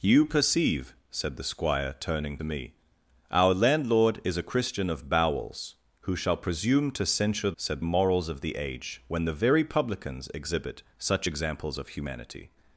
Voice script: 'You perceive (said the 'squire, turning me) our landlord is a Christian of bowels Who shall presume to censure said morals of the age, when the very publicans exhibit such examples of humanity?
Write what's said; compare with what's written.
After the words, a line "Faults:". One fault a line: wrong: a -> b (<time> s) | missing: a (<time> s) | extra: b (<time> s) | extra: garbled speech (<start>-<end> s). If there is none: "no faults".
'You perceive (said the 'squire, turning me) our landlord is a Christian of bowels Who shall presume to censure said morals of the age, when the very publicans exhibit such examples of humanity?
Faults:
no faults